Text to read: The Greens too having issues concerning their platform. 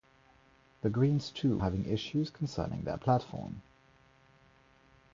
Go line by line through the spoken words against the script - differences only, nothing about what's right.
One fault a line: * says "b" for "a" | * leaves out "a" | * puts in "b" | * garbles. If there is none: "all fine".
all fine